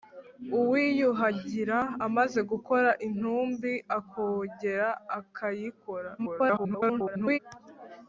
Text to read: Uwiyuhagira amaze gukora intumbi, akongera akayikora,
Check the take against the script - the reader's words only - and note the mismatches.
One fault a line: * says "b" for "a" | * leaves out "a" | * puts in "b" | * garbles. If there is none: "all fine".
* garbles